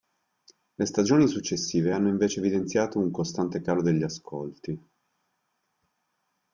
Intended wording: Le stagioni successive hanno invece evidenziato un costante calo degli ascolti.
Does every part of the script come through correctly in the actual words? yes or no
yes